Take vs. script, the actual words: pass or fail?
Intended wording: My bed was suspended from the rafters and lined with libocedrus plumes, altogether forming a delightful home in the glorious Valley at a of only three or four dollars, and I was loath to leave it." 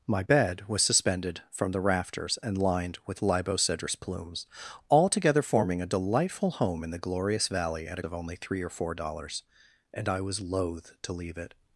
pass